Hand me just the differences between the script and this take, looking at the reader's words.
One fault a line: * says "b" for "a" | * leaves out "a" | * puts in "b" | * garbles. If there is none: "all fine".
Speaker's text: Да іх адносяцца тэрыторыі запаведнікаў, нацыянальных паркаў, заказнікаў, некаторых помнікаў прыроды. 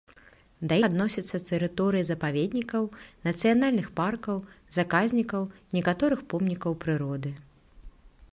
* leaves out "іх"